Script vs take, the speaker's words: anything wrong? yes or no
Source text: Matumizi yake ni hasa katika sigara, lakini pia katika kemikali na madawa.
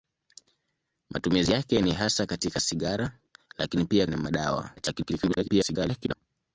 yes